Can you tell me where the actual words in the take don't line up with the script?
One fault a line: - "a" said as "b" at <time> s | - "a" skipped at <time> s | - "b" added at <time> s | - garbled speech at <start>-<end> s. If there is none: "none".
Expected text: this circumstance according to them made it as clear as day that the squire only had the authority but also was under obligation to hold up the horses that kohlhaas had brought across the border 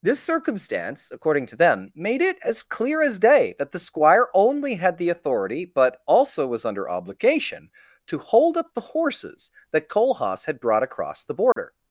none